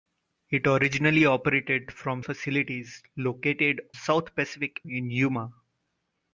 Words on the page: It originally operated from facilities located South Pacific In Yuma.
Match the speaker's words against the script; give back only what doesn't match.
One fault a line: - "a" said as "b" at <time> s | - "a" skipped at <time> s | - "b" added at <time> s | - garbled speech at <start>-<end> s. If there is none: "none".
none